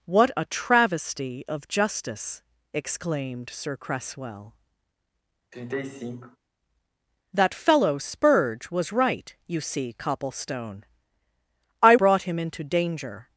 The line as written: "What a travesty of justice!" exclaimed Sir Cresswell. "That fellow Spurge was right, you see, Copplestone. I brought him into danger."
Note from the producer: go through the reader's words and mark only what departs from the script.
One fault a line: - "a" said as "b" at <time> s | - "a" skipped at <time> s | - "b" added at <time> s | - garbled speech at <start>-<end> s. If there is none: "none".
none